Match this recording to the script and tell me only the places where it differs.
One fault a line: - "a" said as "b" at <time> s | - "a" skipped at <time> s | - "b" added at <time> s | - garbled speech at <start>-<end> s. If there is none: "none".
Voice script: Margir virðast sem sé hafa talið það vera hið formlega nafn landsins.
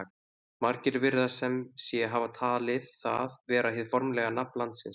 none